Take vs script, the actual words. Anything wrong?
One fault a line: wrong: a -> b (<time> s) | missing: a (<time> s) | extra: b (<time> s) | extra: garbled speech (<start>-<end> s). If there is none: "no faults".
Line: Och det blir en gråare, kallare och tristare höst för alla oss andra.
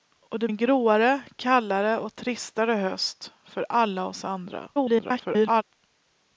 missing: blir (0.5 s)
extra: garbled speech (4.7-5.6 s)